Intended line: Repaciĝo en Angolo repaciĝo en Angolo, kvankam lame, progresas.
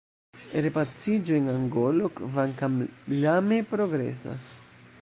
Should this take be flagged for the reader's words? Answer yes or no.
yes